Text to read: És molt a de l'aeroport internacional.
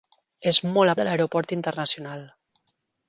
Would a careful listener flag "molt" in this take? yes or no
no